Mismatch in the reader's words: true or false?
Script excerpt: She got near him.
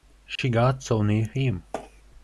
true